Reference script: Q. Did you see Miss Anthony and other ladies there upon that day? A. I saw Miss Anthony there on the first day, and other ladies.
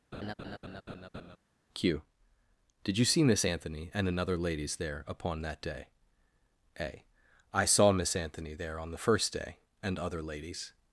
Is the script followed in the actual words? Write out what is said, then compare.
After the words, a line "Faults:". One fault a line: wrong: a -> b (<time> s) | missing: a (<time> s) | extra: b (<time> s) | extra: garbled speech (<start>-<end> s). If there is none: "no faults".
Q. Did you see Miss Anthony and another ladies there upon that day? A. I saw Miss Anthony there on the first day, and other ladies.
Faults:
wrong: other -> another (4.1 s)